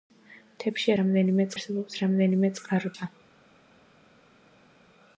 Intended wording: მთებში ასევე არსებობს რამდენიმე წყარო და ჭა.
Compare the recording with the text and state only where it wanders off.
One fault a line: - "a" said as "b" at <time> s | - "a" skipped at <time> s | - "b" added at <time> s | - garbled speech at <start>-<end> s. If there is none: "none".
- "ასევე" said as "რამდენიმე" at 1.0 s
- "და" skipped at 2.9 s